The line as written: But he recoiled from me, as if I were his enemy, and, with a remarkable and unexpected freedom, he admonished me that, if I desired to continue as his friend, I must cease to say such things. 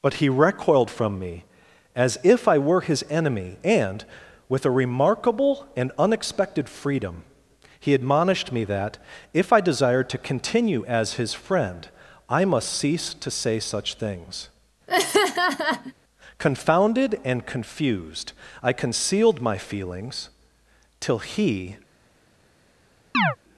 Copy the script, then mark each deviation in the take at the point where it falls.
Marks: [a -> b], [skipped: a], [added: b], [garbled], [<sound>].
But he recoiled from me, as if I were his enemy, and, with a remarkable and unexpected freedom, he admonished me that, if I desired to continue as his friend, I must cease to say such things. [laugh] [added: Confounded and confused I concealed my feelings till he] [chirp]